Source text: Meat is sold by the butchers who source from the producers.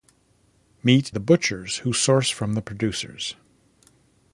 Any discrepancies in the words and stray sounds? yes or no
yes